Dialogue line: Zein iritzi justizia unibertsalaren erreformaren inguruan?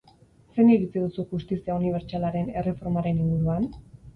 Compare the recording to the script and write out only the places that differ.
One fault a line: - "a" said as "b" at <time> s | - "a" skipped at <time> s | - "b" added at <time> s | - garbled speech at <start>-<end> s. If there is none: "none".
- "duzu" added at 1.0 s